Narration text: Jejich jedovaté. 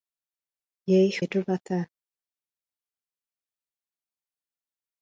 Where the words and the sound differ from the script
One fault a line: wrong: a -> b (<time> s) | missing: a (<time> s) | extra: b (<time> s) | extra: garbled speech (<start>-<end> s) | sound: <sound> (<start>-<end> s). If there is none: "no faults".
no faults